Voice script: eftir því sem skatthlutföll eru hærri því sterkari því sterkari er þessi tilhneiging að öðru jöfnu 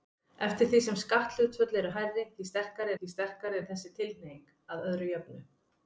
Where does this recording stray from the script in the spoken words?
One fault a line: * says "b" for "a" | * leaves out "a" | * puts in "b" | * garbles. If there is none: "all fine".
all fine